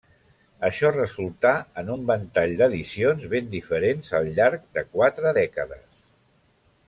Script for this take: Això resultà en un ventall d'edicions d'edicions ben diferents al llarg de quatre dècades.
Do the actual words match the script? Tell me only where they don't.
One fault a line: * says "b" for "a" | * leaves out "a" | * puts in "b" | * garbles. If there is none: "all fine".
* leaves out "d'edicions"